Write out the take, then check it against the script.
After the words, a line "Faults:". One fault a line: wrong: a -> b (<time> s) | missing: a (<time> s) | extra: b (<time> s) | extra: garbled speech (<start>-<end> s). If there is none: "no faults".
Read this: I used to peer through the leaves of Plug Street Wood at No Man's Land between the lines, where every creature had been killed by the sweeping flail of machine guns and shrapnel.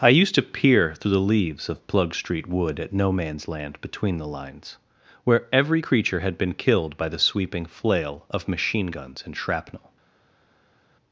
I used to peer through the leaves of Plug Street Wood at No Man's Land between the lines, where every creature had been killed by the sweeping flail of machine guns and shrapnel.
Faults:
no faults